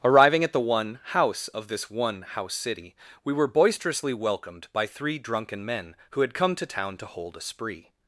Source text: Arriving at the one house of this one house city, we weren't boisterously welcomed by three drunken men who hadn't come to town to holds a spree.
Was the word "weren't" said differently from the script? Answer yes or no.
yes